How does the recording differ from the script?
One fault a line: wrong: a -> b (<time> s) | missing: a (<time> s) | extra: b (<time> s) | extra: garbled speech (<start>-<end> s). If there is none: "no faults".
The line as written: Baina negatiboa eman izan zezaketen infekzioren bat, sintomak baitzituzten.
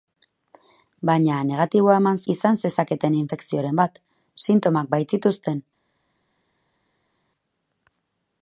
no faults